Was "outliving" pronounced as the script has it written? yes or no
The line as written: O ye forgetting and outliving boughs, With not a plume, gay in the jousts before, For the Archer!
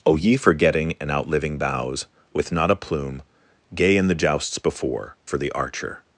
yes